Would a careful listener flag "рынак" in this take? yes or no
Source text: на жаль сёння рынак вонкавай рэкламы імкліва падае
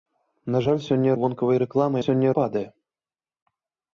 yes